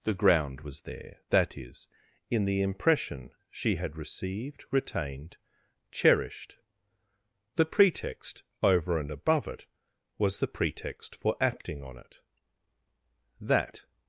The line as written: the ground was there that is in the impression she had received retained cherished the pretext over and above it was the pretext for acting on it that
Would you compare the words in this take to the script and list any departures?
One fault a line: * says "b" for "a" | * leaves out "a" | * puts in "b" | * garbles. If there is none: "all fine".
all fine